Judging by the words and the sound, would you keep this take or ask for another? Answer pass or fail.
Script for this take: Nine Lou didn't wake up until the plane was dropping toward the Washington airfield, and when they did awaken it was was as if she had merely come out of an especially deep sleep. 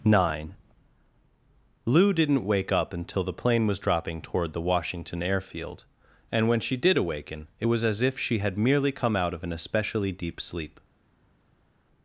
fail